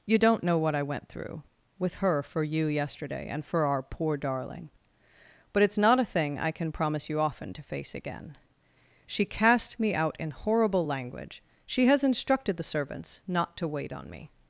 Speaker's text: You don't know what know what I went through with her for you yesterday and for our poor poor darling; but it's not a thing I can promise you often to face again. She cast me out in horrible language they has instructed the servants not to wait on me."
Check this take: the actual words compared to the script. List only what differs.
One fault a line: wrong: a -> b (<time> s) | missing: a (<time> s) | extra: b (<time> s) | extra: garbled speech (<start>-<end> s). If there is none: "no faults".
missing: know what (0.7 s)
missing: poor (4.2 s)
wrong: they -> she (11.7 s)